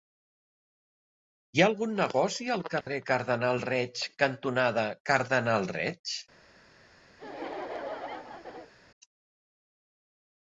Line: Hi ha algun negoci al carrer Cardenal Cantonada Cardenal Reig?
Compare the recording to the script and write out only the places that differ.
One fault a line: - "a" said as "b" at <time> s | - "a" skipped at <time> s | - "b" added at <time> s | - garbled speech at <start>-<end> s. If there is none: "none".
- "Reig" added at 3.7 s